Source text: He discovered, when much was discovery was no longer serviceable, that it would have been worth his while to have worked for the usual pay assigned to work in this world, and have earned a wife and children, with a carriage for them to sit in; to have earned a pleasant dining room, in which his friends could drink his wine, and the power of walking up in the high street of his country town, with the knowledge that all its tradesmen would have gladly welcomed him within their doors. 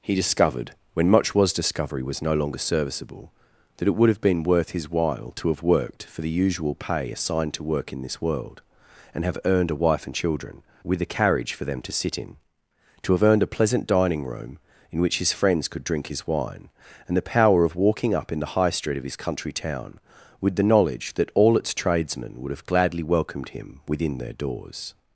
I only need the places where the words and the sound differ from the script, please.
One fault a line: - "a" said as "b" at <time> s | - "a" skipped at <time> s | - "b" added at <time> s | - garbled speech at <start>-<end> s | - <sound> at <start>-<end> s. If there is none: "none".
none